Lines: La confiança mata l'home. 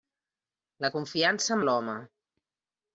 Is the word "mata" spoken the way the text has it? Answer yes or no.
no